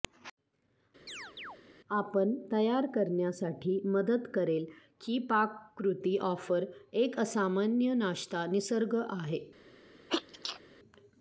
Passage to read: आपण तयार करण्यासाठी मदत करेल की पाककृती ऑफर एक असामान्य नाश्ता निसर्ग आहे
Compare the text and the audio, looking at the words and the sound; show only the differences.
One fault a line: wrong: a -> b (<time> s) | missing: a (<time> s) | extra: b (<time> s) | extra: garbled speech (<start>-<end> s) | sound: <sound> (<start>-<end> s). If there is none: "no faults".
sound: chirp (1.1-1.6 s)
sound: sneeze (10.1-10.6 s)